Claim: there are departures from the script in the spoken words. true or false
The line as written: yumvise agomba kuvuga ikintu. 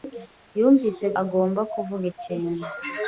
false